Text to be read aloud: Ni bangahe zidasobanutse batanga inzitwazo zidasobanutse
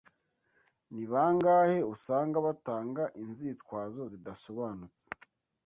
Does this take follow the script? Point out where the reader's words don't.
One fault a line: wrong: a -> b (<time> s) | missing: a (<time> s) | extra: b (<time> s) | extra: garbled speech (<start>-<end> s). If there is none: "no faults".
wrong: zidasobanutse -> usanga (1.9 s)